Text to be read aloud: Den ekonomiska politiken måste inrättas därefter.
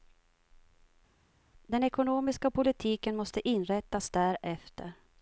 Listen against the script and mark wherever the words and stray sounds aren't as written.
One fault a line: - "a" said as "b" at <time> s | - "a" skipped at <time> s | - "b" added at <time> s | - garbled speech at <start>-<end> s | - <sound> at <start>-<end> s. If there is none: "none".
none